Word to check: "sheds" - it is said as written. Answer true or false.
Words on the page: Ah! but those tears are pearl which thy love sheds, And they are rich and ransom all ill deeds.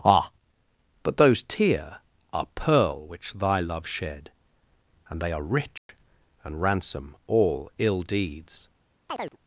false